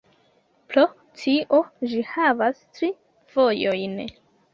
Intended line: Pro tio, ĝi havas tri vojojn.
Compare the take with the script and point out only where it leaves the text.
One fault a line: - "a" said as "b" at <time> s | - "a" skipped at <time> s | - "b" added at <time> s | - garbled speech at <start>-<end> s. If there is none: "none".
none